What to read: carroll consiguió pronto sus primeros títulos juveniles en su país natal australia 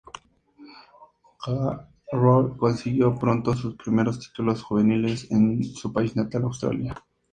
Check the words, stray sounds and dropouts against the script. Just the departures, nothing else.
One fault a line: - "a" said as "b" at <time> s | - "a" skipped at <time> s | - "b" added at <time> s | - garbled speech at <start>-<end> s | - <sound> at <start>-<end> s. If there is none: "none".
none